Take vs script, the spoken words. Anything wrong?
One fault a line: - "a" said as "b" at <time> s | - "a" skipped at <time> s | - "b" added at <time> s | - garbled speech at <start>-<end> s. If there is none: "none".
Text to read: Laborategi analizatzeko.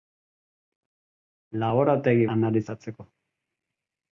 none